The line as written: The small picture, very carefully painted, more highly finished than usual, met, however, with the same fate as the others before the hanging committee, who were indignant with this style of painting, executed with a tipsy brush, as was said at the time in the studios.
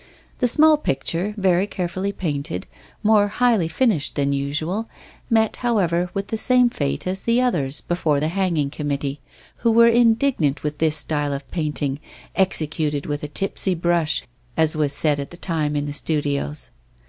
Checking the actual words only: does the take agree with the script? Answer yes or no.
yes